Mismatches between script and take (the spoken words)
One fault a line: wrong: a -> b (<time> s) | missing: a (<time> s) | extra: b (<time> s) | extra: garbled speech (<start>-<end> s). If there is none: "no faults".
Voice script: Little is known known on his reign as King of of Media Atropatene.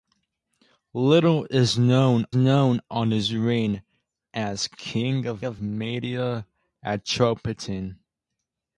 no faults